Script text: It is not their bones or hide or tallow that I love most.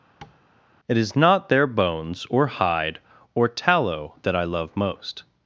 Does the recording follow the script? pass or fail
pass